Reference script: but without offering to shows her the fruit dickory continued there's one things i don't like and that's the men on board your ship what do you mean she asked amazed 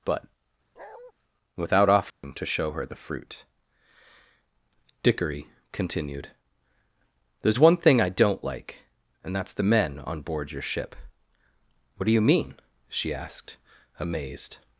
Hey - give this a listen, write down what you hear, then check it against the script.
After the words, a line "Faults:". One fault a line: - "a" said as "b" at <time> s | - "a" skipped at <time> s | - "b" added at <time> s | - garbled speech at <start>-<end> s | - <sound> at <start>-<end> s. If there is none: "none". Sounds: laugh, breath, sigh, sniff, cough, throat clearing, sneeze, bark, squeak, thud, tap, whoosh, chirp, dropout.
but without offering to show her the fruit dickory continued there's one thing i don't like and that's the men on board your ship what do you mean she asked amazed
Faults:
- bark at 0.8-1.1 s
- dropout at 2.1-2.2 s
- "shows" said as "show" at 2.5 s
- "things" said as "thing" at 7.8 s